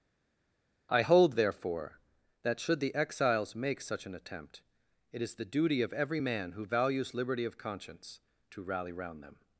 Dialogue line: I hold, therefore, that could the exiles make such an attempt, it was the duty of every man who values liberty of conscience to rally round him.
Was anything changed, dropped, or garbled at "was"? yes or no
yes